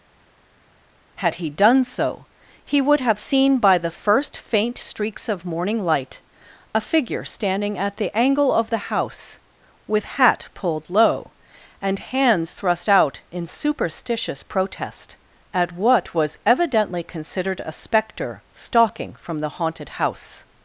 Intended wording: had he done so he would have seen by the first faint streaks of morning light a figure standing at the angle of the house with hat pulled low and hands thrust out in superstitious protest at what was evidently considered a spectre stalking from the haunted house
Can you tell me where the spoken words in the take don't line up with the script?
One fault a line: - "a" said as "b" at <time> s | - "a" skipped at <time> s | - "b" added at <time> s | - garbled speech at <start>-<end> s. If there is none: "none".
none